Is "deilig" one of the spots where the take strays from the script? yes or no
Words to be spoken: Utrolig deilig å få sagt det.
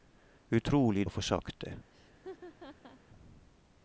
yes